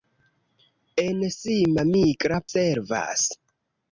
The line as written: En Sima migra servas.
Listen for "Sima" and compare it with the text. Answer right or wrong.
right